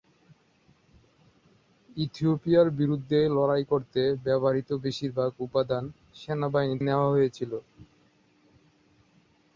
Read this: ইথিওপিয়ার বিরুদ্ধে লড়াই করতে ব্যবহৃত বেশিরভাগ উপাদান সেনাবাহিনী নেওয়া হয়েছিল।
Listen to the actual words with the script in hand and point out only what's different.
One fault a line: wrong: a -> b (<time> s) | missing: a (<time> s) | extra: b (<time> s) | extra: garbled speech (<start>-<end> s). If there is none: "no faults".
no faults